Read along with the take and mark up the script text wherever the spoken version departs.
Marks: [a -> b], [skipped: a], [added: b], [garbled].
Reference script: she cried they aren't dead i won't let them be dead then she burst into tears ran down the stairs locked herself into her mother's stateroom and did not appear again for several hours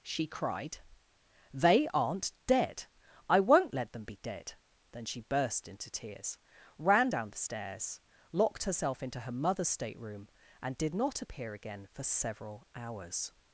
she cried they aren't dead i won't let them be dead then she burst into tears ran down the stairs locked herself into her mother's stateroom and did not appear again for several hours